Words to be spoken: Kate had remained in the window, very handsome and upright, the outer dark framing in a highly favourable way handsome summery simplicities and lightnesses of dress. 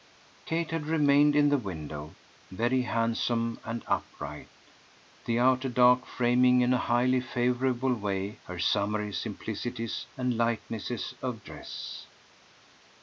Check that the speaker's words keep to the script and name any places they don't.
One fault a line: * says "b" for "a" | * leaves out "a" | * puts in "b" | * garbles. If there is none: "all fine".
* says "her" for "handsome"